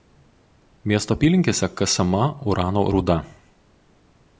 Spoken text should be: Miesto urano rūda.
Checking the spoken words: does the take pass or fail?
fail